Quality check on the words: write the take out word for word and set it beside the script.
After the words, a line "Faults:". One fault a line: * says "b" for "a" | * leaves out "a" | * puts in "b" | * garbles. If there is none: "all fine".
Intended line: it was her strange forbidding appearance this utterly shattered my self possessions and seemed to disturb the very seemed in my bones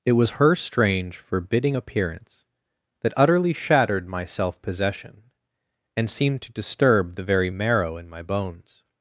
it was her strange forbidding appearance that utterly shattered my self possession and seemed to disturb the very marrow in my bones
Faults:
* says "that" for "this"
* says "possession" for "possessions"
* says "marrow" for "seemed"